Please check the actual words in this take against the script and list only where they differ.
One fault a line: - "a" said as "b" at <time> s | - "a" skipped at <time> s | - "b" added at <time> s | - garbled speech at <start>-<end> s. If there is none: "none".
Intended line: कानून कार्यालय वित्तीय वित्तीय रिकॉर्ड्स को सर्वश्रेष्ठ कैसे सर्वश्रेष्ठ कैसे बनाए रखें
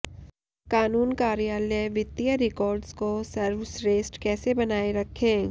- "वित्तीय" skipped at 2.4 s
- "सर्वश्रेष्ठ कैसे" skipped at 4.5 s